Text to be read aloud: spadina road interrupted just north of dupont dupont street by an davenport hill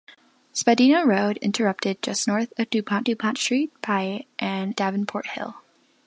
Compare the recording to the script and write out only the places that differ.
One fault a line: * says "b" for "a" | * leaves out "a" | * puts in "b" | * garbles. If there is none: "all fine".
all fine